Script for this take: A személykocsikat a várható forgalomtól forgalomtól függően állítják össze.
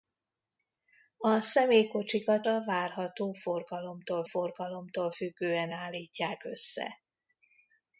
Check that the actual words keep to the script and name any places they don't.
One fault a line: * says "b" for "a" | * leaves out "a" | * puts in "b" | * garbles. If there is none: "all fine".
all fine